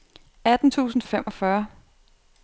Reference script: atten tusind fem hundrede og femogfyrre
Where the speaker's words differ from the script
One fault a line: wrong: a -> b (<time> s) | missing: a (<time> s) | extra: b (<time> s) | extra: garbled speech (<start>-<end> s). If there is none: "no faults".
missing: fem hundrede (1.0 s)